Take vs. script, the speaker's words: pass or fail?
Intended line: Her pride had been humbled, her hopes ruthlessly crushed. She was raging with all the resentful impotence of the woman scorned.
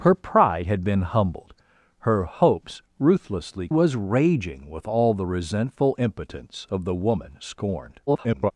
fail